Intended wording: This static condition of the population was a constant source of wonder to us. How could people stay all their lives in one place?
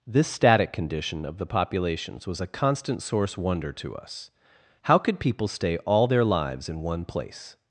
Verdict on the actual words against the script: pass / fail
fail